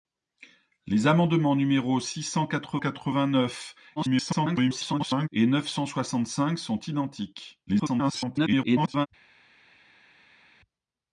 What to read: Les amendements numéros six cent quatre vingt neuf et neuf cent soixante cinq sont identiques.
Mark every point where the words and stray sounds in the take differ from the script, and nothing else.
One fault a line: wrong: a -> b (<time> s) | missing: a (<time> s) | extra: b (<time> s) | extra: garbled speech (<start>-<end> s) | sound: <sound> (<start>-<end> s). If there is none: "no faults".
extra: quatre (2.8 s)
extra: garbled speech (4.0-5.3 s)
extra: garbled speech (7.7-9.1 s)